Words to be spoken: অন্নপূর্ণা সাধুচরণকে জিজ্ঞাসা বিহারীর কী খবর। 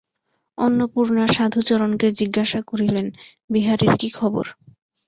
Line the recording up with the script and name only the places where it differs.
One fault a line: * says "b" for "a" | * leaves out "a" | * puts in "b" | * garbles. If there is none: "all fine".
* puts in "করিলেন"